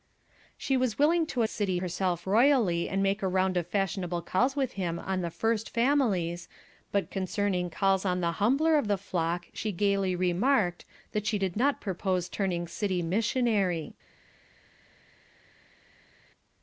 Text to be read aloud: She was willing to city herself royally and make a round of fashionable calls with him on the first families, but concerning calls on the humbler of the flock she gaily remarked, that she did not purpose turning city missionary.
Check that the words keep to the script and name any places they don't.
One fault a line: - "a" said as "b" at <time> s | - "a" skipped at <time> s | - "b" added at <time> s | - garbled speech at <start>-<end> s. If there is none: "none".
none